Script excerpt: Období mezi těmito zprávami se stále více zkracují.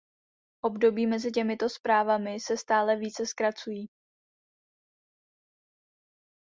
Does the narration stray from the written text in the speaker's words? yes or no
no